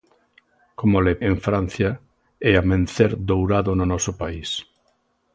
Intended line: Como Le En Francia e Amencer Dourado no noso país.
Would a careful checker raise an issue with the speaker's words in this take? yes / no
no